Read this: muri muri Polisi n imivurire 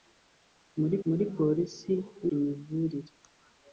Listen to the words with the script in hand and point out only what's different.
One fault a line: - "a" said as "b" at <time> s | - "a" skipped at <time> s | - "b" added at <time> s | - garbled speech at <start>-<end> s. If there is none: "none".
none